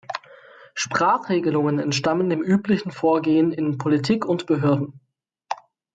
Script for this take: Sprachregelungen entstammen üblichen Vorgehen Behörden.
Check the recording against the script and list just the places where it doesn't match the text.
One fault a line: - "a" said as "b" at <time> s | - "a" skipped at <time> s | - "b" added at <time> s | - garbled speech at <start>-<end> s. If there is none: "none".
- "dem" added at 2.3 s
- "in Politik und" added at 3.5 s